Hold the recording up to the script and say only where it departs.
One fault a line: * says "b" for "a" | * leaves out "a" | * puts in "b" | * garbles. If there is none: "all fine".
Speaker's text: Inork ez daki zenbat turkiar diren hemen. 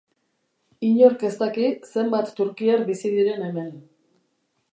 * puts in "bizi"